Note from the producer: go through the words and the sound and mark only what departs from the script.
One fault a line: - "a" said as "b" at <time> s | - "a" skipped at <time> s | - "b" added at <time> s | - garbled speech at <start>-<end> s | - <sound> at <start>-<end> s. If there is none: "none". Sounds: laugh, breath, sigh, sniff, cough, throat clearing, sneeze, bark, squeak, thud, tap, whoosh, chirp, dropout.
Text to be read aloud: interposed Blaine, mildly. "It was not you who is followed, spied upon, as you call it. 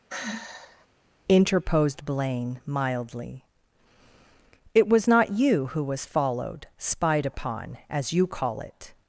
- sigh at 0.1-0.9 s
- "is" said as "was" at 5.8 s